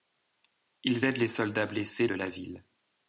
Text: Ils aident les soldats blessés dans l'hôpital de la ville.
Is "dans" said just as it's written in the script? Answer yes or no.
no